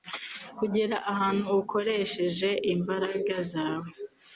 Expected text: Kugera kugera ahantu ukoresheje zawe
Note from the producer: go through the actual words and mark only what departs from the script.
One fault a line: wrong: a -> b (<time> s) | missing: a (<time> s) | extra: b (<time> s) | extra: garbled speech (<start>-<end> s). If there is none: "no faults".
missing: kugera (0.9 s)
extra: imbaraga (2.7 s)